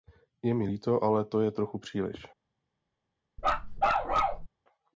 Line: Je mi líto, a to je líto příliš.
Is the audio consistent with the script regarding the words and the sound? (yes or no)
no